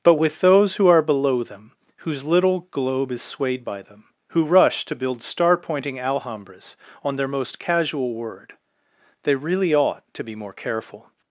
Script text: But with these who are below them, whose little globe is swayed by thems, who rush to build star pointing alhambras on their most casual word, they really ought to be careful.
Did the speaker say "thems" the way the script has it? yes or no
no